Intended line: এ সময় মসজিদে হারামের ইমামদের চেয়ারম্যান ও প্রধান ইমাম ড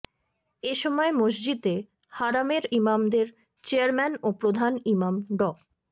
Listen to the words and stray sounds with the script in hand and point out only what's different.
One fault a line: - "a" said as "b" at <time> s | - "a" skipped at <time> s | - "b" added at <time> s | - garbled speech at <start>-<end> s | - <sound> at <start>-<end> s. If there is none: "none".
none